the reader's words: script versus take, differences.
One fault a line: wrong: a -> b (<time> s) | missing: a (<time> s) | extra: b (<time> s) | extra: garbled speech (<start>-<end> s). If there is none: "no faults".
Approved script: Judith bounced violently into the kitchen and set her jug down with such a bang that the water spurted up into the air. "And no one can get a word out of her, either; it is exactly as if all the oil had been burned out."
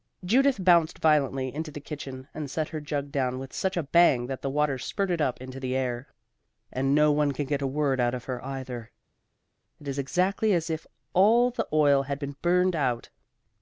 no faults